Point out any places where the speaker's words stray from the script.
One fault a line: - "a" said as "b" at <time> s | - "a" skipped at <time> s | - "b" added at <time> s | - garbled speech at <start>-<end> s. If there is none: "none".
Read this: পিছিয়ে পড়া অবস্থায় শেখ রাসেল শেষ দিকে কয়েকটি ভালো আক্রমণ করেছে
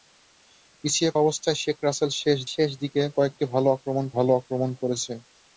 - "পড়া" skipped at 1.1 s
- "শেষ" added at 2.5 s
- "ভালো আক্রমণ" added at 4.2 s